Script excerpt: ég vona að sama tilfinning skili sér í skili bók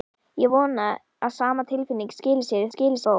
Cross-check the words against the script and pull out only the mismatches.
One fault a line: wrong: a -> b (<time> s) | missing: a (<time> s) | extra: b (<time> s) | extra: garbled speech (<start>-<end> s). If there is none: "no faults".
no faults